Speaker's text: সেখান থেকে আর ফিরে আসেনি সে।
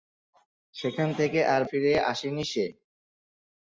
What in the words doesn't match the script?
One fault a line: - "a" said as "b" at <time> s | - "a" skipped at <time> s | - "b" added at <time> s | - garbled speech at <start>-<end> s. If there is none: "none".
none